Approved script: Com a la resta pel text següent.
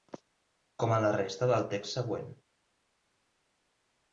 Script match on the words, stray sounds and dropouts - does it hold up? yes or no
no